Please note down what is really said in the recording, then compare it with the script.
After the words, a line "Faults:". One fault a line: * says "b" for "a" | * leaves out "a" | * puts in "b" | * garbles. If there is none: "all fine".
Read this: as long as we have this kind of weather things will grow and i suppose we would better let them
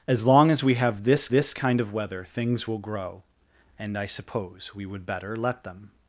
as long as we have this this kind of weather things will grow and i suppose we would better let them
Faults:
* puts in "this"